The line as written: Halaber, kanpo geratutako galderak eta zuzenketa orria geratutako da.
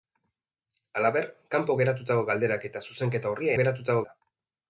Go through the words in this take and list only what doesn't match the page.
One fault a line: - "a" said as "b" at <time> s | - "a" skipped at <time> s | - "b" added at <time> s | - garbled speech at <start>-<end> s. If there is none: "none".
none